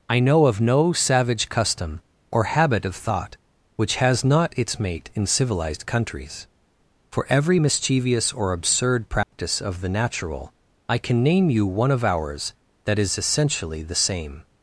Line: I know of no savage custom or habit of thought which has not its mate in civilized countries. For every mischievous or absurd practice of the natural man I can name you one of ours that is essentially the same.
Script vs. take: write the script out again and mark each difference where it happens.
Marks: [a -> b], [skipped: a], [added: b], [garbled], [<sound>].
I know of no savage custom or habit of thought which has not its mate in civilized countries. For every mischievous or absurd practice [dropout] of the natural [skipped: man] I can name you one of ours that is essentially the same.